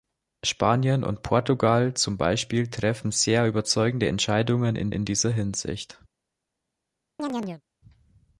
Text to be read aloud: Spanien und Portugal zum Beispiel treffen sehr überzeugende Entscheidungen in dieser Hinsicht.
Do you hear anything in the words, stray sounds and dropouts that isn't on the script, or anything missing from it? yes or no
yes